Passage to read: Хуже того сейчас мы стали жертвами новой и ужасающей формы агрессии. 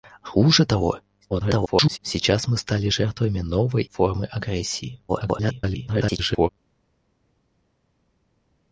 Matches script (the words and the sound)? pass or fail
fail